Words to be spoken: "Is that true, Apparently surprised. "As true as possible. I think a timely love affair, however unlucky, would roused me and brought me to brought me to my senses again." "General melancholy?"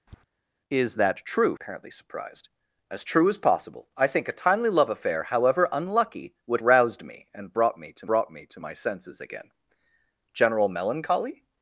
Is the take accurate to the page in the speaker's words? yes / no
yes